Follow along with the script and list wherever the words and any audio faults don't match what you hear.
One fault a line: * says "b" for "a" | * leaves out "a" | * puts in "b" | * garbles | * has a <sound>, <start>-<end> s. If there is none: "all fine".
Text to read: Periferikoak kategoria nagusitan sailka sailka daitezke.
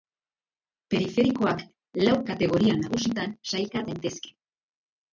* puts in "lau"
* leaves out "sailka"